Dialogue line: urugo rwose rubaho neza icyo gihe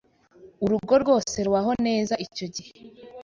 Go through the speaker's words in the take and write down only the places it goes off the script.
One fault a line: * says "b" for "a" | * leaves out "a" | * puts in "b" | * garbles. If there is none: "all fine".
all fine